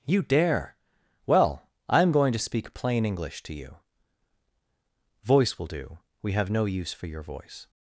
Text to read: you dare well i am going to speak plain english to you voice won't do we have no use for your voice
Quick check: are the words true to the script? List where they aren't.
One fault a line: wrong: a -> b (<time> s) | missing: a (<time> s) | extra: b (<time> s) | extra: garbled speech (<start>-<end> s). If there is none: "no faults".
wrong: won't -> will (5.6 s)